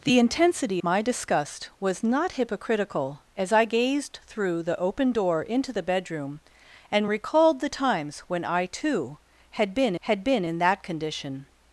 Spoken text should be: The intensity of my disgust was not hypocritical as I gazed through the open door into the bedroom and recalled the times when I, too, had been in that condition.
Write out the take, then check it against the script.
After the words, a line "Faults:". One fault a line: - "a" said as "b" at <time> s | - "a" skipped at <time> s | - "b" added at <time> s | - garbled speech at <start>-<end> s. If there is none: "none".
The intensity my disgust was not hypocritical as I gazed through the open door into the bedroom and recalled the times when I, too, had been had been in that condition.
Faults:
- "of" skipped at 0.8 s
- "had been" added at 10.0 s